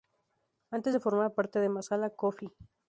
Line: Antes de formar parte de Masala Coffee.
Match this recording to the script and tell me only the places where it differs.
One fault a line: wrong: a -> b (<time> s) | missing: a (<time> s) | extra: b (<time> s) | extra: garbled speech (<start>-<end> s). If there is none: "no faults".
no faults